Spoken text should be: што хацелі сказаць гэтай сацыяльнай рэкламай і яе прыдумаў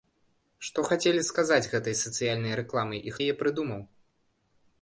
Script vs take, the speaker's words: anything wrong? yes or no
no